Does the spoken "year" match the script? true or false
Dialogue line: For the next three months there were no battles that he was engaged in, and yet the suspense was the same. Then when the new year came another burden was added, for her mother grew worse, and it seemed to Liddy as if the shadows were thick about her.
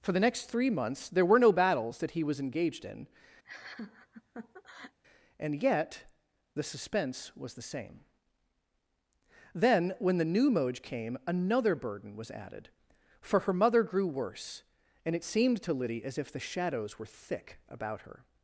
false